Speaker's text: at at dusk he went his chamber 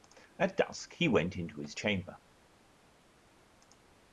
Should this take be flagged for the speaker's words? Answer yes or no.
yes